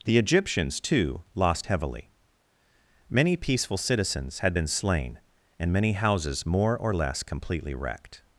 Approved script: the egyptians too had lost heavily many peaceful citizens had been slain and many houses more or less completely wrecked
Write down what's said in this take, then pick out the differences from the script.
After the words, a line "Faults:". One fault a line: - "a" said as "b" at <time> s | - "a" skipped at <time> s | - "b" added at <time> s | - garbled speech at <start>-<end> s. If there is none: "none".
the egyptians too lost heavily many peaceful citizens had been slain and many houses more or less completely wrecked
Faults:
- "had" skipped at 1.2 s